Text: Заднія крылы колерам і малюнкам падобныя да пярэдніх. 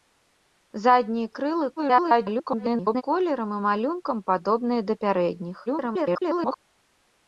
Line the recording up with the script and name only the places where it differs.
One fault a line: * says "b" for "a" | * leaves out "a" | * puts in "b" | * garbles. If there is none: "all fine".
* garbles
* garbles